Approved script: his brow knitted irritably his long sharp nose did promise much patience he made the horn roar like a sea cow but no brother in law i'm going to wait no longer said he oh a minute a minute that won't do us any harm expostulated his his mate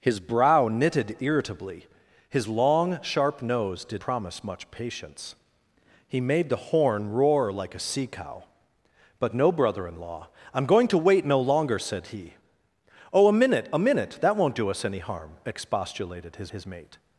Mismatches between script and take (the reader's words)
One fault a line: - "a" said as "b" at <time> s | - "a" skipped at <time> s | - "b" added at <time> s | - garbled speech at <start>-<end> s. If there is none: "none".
none